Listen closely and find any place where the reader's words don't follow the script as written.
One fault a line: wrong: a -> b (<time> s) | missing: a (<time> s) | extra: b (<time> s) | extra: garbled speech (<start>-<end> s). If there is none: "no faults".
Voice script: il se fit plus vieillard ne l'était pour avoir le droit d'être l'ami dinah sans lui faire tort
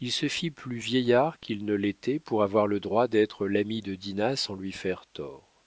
extra: qu'il (1.4 s)
extra: de (3.8 s)